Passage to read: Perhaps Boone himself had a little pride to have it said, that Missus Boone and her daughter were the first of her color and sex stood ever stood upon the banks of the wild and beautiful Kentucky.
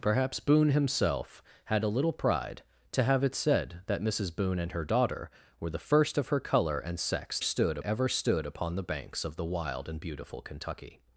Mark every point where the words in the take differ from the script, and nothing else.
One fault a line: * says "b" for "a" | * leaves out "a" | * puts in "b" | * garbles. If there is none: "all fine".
all fine